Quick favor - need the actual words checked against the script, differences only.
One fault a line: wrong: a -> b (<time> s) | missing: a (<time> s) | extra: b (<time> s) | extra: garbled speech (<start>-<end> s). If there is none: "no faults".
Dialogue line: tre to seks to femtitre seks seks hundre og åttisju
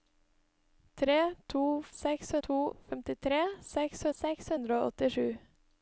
no faults